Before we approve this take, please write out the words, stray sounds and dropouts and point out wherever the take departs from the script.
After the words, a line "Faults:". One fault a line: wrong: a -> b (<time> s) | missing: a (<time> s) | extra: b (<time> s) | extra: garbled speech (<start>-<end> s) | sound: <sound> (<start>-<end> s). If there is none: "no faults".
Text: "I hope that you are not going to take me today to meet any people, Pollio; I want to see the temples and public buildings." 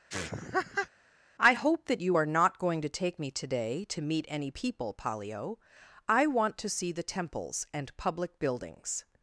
"I hope that you are not going to take me today to meet any people, Pollio; I want to see the temples and public buildings."
Faults:
sound: laugh (0.1-0.9 s)